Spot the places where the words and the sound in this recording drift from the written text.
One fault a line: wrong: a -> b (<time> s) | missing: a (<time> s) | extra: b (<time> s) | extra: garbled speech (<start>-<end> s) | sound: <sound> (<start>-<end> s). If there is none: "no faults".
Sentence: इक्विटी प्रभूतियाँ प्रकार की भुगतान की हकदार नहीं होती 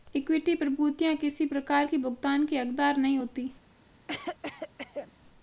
extra: किसी (1.1 s)
sound: cough (4.1-5.1 s)